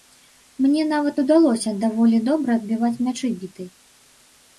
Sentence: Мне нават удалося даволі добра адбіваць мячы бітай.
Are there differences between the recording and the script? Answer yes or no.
no